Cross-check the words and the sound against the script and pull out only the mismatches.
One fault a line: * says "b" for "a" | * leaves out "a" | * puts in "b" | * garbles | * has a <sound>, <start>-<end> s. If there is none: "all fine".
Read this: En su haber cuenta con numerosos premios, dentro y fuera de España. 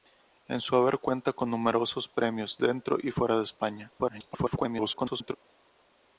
* garbles